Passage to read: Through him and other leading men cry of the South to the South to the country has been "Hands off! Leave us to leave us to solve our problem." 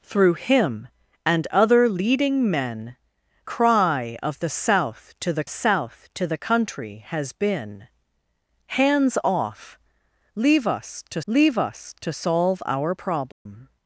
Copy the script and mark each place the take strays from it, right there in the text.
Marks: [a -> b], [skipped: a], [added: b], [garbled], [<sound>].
Through him and other leading men cry of the South to the South to the country has been "Hands off! Leave us to leave us to solve our problem." [dropout]